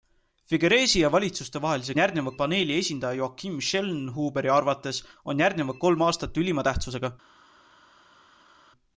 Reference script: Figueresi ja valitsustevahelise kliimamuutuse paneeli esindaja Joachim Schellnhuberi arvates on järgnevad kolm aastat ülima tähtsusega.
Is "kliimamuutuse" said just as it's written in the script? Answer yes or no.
no